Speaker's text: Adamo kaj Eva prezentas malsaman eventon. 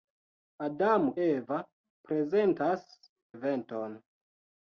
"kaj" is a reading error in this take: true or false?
true